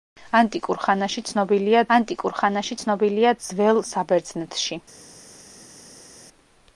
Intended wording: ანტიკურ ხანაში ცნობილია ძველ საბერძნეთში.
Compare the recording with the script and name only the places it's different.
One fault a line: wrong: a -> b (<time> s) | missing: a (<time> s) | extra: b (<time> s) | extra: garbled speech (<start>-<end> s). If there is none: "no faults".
extra: ანტიკურ ხანაში ცნობილია (1.9 s)